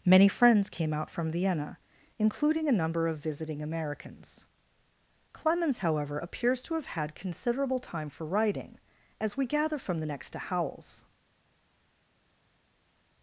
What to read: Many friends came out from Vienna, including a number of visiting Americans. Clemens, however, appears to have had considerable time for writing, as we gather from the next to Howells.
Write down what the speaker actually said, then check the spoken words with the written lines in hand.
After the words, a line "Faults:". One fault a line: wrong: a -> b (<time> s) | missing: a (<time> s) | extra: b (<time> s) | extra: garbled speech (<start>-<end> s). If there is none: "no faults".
Many friends came out from Vienna, including a number of visiting Americans. Clemens, however, appears to have had considerable time for writing, as we gather from the next to Howells.
Faults:
no faults